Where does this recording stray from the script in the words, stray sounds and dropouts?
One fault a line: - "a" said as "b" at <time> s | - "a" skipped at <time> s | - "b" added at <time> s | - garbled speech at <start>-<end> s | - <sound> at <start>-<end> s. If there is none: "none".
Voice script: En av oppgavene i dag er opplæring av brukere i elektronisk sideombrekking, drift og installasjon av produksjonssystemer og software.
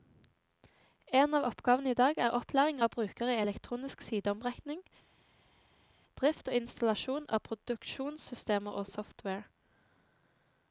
none